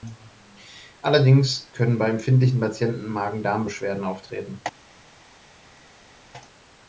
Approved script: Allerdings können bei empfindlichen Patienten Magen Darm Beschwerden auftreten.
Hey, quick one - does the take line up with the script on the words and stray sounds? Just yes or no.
yes